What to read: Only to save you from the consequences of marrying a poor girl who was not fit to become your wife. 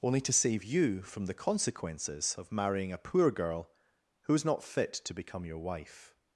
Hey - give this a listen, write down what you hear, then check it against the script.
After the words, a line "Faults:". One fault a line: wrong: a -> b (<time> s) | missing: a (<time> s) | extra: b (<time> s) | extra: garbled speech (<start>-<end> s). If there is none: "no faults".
Only to save you from the consequences of marrying a poor girl who is not fit to become your wife.
Faults:
wrong: was -> is (4.3 s)